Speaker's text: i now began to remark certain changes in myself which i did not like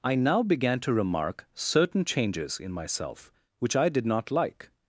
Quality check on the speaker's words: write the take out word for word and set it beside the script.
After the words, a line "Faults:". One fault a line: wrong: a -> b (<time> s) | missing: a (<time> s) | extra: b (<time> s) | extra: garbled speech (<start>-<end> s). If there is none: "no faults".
i now began to remark certain changes in myself which i did not like
Faults:
no faults